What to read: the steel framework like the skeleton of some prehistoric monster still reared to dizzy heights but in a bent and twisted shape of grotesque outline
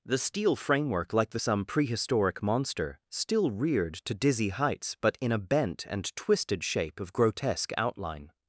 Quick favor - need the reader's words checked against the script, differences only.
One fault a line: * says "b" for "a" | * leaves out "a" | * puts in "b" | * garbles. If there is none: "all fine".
* leaves out "skeleton of"